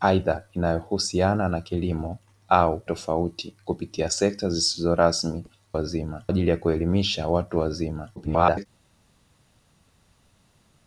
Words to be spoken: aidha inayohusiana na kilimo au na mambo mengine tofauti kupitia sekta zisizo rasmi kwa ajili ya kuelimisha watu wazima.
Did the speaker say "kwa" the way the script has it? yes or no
no